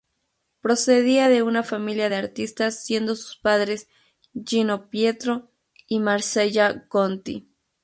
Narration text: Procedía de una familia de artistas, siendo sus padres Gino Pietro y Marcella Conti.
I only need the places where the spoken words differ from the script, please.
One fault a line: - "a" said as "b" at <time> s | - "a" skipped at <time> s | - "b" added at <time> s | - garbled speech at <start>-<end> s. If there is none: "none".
none